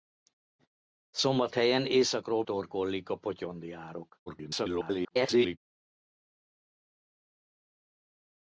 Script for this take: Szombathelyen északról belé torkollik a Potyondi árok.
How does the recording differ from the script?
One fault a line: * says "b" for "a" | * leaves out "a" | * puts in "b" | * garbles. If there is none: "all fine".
* leaves out "belé"
* garbles